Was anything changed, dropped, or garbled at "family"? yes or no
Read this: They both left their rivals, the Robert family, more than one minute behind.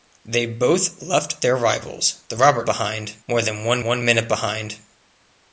yes